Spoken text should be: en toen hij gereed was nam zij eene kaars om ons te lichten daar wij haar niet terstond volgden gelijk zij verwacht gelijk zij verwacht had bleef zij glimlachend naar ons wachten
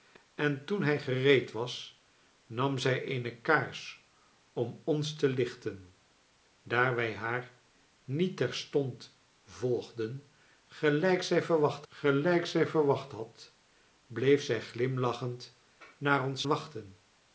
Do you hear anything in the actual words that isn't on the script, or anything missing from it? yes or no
no